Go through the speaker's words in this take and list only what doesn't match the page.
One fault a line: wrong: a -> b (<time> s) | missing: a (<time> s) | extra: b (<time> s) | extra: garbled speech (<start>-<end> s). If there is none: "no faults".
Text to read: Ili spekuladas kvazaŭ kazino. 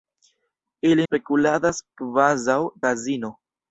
no faults